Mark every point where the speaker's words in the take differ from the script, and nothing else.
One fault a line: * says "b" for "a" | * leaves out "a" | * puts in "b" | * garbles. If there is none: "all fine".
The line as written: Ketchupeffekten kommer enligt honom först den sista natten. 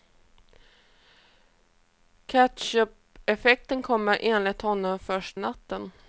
* leaves out "den sista"